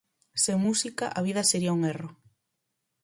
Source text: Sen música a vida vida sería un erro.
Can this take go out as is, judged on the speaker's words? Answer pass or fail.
fail